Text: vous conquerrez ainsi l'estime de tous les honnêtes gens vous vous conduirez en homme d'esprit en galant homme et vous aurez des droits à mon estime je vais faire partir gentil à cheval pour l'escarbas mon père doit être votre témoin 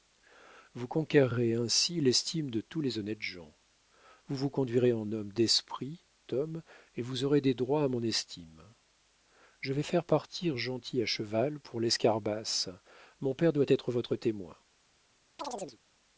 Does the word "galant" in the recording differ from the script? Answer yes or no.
yes